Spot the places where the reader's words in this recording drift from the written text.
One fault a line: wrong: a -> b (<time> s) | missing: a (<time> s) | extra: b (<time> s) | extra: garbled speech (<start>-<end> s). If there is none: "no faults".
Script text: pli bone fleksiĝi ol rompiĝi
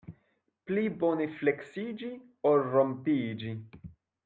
no faults